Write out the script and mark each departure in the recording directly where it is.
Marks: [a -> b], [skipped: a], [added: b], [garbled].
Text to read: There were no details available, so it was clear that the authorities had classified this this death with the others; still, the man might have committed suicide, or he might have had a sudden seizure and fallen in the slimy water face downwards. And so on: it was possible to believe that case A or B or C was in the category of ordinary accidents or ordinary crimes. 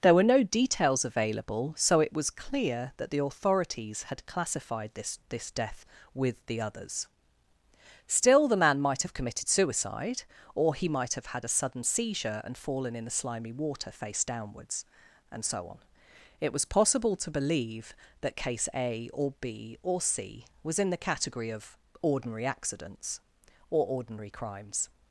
There were no details available, so it was clear that the authorities had classified this this death with the others; still, the man might have committed suicide, or he might have had a sudden seizure and fallen in the slimy water face downwards. And so on: it was possible to believe that case A or B or C was in the category of ordinary accidents or ordinary crimes.